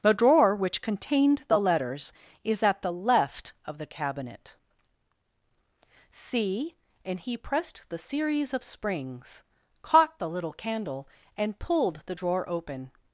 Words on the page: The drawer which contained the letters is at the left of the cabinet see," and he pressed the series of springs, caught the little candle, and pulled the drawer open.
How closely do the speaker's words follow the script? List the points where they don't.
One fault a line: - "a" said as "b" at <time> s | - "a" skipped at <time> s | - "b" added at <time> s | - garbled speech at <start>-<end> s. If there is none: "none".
none